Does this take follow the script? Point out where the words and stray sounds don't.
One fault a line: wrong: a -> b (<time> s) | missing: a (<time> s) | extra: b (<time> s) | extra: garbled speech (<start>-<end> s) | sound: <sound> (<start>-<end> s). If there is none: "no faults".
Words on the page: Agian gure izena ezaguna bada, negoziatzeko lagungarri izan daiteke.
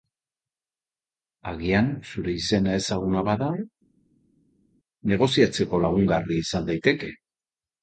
wrong: gure -> zure (2.1 s)